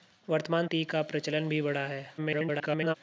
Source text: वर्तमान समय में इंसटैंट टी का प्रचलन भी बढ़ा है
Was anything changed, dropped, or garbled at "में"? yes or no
yes